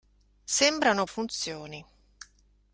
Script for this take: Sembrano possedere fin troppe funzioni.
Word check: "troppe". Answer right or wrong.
wrong